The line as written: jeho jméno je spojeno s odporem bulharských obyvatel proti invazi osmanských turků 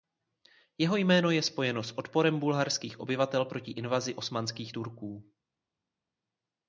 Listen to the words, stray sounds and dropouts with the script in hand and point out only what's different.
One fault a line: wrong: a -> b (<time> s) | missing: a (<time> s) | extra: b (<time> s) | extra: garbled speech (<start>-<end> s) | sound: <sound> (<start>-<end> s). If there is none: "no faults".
no faults